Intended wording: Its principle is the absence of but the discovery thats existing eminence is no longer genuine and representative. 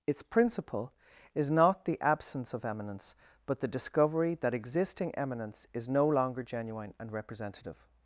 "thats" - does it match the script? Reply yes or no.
no